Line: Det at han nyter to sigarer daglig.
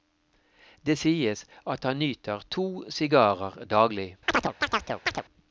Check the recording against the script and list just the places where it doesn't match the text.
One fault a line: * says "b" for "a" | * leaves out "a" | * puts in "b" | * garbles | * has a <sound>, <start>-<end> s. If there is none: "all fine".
* puts in "sies"
* has a chirp, 4.3-5.2 s